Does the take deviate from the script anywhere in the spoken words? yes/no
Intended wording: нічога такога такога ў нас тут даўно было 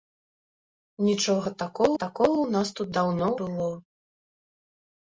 no